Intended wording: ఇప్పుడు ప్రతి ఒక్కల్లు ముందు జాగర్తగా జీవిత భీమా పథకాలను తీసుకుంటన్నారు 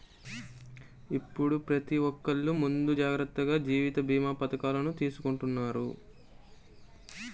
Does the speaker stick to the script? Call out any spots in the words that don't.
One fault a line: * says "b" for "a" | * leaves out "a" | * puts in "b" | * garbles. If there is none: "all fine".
all fine